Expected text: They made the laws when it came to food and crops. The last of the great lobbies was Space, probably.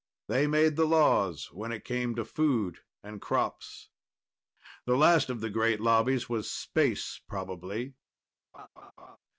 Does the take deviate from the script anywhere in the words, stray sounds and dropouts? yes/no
yes